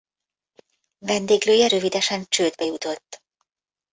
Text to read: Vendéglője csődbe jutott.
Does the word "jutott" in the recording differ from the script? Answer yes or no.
no